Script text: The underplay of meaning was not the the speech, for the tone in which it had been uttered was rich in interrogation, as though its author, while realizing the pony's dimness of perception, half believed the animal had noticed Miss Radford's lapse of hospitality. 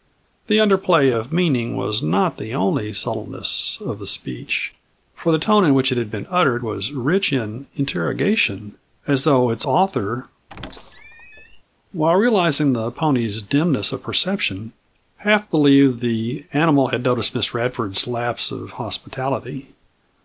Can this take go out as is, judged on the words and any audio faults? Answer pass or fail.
fail